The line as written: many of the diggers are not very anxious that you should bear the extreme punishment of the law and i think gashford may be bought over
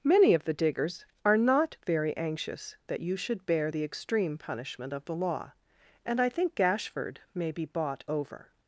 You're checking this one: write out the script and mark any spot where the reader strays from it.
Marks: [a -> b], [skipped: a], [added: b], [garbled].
many of the diggers are not very anxious that you should bear the extreme punishment of the law and i think gashford may be bought over